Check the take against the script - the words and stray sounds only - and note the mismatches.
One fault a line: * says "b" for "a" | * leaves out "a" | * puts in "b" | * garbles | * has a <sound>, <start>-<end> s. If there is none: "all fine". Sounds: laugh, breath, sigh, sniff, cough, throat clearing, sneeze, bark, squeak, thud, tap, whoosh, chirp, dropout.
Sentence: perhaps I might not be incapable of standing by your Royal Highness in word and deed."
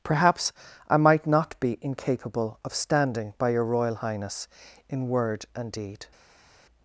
all fine